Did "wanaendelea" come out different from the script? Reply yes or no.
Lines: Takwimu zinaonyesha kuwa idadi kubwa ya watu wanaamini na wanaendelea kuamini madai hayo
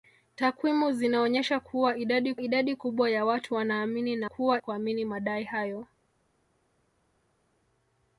yes